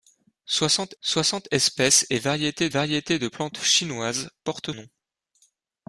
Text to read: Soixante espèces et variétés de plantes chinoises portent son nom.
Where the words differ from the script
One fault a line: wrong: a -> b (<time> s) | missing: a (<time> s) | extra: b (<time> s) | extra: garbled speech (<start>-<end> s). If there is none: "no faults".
extra: soixante (1.0 s)
extra: variétés (2.7 s)
missing: son (4.7 s)